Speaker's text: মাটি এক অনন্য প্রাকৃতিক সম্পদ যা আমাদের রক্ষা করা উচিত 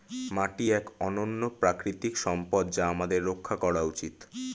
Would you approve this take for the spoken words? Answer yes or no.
yes